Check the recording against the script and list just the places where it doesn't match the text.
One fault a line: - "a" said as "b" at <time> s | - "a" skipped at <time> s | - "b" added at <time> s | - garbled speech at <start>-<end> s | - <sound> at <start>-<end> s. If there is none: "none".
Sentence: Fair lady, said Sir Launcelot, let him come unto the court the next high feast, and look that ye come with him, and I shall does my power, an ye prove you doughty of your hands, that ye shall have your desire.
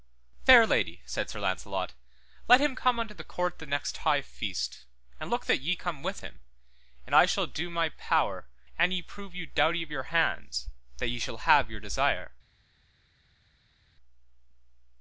- "does" said as "do" at 7.5 s